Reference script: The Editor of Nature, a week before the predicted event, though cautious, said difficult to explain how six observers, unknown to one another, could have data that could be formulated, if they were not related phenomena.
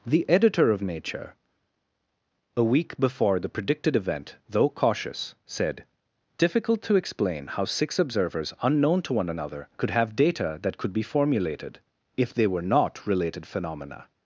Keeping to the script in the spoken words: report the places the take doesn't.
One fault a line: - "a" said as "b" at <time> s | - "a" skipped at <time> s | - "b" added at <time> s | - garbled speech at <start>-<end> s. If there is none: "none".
none